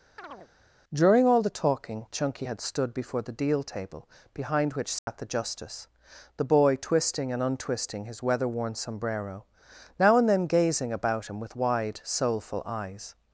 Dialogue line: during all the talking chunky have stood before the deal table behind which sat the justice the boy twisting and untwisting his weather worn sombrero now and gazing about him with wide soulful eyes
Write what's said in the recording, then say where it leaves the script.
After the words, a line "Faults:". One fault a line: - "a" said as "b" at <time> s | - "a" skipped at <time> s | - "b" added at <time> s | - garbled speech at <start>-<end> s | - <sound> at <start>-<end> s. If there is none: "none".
during all the talking chunky had stood before the deal table behind which sat the justice the boy twisting and untwisting his weather worn sombrero now and then gazing about him with wide soulful eyes
Faults:
- chirp at 0.2-0.5 s
- "have" said as "had" at 2.4 s
- dropout at 5.0-5.1 s
- "then" added at 10.3 s